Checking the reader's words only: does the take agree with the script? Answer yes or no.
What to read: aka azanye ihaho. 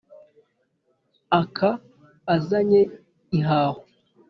yes